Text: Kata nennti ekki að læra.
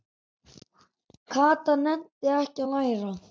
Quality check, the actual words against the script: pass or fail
pass